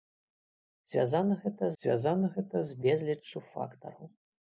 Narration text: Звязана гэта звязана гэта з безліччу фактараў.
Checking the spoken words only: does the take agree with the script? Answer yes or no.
yes